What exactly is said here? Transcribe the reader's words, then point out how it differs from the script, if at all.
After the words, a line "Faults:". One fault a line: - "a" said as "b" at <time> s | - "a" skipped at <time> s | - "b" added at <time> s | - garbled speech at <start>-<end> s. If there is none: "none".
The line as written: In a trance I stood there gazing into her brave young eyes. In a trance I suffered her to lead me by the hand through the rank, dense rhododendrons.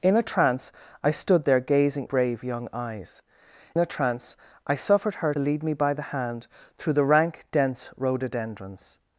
In a trance I stood there gazing brave young eyes. A trance I suffered her lead me by the hand through the rank, dense rhododendrons.
Faults:
- "into her" skipped at 2.1 s
- "In" skipped at 3.2 s
- "to" skipped at 5.3 s